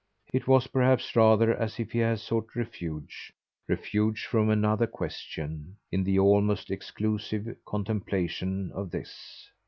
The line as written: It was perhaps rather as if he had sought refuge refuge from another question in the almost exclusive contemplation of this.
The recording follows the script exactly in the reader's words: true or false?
true